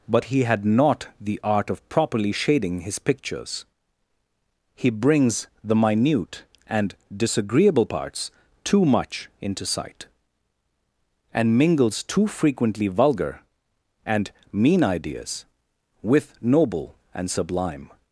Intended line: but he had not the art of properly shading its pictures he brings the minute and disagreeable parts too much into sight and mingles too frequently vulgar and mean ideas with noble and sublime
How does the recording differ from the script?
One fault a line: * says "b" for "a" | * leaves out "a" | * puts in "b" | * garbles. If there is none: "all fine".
* says "his" for "its"